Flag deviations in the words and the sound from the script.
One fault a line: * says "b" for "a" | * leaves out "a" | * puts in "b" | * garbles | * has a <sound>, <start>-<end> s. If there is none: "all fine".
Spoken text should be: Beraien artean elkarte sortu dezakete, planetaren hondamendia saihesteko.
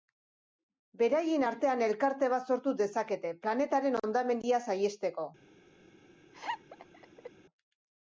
* puts in "bat"
* has a laugh, 6.3-7.3 s